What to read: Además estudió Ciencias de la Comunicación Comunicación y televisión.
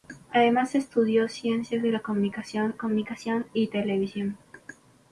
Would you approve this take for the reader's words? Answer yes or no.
yes